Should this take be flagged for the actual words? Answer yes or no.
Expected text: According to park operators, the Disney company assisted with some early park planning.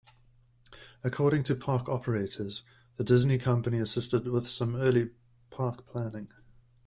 no